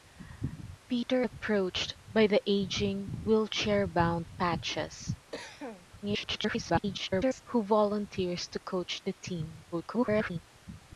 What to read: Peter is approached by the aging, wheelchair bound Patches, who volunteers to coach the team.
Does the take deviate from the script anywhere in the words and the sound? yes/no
yes